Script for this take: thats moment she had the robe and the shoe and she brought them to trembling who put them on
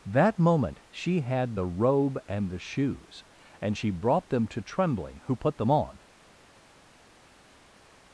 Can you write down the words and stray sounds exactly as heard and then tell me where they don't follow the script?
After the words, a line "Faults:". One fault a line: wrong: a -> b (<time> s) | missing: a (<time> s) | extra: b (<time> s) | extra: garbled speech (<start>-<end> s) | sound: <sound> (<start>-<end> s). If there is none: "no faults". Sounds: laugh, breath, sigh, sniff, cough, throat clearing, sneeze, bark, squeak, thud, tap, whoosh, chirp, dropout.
that moment she had the robe and the shoes and she brought them to trembling who put them on
Faults:
wrong: thats -> that (0.1 s)
wrong: shoe -> shoes (2.6 s)